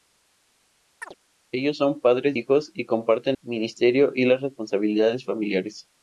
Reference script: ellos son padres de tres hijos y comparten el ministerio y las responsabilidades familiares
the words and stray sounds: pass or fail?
fail